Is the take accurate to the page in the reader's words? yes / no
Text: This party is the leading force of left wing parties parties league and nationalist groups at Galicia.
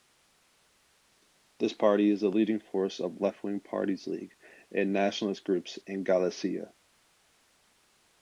no